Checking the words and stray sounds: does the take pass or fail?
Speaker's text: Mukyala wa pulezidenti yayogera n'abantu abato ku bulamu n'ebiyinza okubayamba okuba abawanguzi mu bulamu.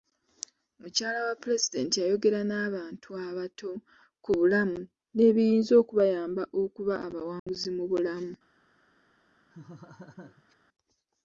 fail